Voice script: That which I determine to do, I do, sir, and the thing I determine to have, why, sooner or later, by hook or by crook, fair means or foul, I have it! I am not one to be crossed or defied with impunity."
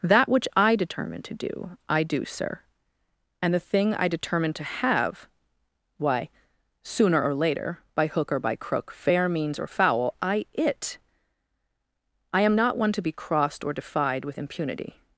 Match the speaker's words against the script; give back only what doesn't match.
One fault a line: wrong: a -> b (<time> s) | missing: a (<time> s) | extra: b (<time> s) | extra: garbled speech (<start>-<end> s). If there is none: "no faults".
missing: have (10.5 s)